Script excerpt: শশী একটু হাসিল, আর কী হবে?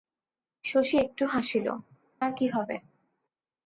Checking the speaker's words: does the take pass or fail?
pass